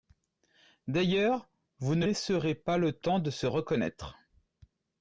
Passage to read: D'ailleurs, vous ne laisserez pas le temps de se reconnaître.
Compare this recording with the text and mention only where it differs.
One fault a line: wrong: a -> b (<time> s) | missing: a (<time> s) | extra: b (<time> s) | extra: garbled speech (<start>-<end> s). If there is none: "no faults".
no faults